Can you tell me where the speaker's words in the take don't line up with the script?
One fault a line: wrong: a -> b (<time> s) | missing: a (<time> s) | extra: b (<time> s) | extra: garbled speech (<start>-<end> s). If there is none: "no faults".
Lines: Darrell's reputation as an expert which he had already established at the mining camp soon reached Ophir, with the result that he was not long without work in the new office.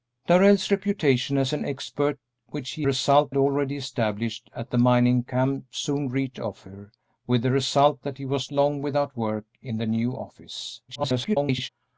wrong: had -> result (2.8 s)
missing: not (8.5 s)
extra: garbled speech (10.9-11.7 s)